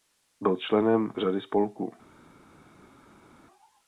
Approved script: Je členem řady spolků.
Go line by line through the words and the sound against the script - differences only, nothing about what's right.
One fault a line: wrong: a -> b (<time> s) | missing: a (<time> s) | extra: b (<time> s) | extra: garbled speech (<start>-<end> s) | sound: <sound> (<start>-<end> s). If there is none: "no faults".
wrong: Je -> Byl (0.4 s)